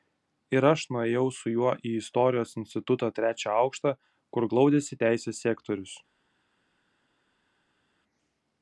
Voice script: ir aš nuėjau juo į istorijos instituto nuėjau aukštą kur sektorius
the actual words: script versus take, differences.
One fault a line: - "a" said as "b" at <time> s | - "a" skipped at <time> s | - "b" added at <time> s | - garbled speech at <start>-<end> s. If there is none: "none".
- "su" added at 1.4 s
- "nuėjau" said as "trečią" at 3.2 s
- "glaudėsi teisės" added at 4.5 s